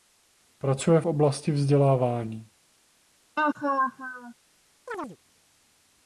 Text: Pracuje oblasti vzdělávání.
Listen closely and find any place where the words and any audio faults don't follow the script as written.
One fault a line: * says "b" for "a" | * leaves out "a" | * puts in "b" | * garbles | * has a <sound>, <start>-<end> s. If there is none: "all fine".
* has a laugh, 3.4-4.3 s
* has a chirp, 4.9-5.2 s